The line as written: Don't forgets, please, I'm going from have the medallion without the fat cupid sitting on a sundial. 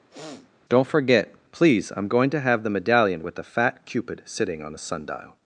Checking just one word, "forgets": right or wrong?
wrong